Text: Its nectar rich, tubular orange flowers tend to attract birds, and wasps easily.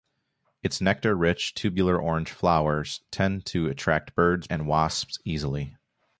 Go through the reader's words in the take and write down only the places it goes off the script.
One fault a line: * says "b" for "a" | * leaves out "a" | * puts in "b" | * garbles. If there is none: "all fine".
all fine